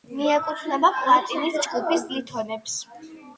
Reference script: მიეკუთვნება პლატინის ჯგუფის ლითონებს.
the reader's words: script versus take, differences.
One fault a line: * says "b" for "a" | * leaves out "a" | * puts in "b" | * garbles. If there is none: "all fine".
all fine